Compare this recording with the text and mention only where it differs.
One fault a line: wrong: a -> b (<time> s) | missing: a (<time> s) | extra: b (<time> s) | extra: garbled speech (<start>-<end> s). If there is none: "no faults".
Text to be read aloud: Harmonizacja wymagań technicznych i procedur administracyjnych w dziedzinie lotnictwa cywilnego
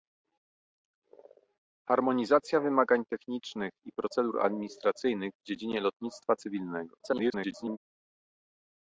extra: garbled speech (7.0-7.8 s)